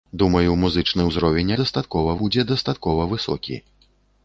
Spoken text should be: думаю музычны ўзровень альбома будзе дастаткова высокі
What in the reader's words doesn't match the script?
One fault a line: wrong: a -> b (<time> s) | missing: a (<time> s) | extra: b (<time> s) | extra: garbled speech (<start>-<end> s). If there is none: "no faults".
wrong: альбома -> дастаткова (1.6 s)